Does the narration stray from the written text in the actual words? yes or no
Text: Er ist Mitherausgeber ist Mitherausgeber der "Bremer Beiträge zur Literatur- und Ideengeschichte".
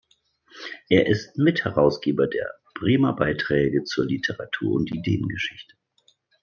yes